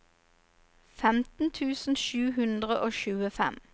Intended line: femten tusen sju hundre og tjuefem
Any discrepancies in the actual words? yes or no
no